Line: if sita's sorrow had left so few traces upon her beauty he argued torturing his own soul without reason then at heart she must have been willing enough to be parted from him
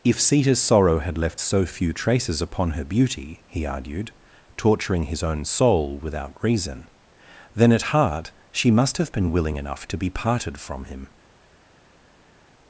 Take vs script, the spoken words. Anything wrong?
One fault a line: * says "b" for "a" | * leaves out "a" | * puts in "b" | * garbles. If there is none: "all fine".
all fine